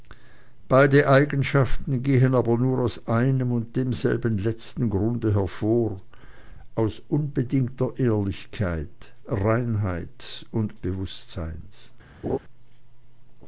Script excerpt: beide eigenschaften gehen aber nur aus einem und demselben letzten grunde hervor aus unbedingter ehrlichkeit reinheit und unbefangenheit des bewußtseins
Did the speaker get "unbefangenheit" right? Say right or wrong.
wrong